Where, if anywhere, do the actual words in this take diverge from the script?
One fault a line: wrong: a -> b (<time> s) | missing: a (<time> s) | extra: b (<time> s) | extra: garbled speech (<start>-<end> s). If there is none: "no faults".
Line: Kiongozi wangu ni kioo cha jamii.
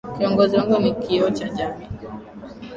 no faults